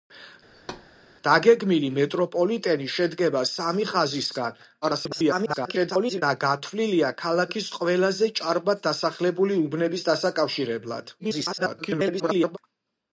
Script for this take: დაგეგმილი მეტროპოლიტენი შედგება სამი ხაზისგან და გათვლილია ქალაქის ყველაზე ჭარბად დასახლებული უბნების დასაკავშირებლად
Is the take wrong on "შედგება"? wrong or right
right